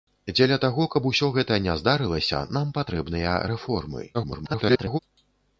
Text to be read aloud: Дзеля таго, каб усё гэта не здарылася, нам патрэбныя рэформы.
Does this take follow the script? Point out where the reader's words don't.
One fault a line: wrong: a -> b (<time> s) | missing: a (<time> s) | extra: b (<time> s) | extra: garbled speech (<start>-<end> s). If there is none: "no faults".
extra: garbled speech (4.1-5.0 s)